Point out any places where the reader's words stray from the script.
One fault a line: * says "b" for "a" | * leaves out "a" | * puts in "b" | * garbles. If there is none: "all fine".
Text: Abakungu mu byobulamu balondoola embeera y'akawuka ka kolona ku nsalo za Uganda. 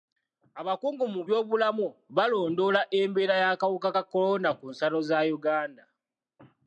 all fine